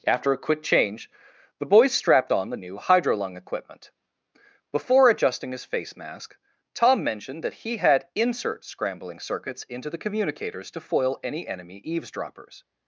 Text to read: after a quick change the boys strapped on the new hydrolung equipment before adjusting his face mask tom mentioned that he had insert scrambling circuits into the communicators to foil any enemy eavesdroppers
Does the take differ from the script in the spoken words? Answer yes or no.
no